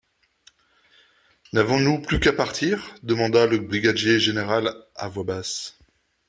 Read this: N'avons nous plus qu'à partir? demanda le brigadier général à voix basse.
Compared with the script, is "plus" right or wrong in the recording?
right